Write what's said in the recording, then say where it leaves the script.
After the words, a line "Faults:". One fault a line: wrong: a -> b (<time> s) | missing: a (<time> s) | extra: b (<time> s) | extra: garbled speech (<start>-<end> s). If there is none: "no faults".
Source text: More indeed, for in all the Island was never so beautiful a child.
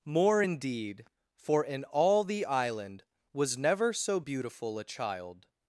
More indeed, for in all the Island was never so beautiful a child.
Faults:
no faults